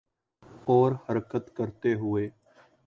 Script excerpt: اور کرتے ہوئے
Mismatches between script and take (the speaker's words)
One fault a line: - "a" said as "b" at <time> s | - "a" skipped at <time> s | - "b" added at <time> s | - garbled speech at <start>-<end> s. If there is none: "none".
- "حرکت" added at 1.1 s